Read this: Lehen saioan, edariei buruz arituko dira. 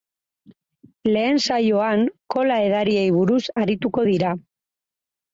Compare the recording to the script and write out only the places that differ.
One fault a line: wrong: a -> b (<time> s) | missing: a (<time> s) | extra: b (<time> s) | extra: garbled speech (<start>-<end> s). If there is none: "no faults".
extra: kola (2.4 s)